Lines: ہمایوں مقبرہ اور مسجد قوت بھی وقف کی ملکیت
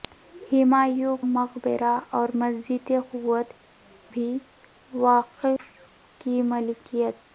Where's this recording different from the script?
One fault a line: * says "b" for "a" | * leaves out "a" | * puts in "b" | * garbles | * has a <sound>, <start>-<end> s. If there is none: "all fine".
* has a dropout, 5.6-5.6 s